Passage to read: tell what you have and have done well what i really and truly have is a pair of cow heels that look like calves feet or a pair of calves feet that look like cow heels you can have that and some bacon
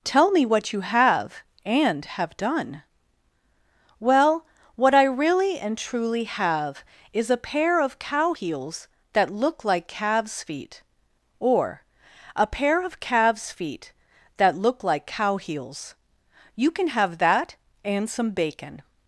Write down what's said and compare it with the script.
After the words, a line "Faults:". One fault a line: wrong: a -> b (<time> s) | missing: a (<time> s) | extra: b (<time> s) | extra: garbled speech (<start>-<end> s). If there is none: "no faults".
tell me what you have and have done well what i really and truly have is a pair of cow heels that look like calves feet or a pair of calves feet that look like cow heels you can have that and some bacon
Faults:
extra: me (0.3 s)